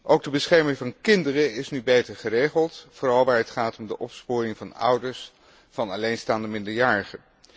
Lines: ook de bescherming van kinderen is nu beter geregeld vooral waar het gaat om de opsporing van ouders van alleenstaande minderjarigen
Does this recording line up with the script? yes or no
yes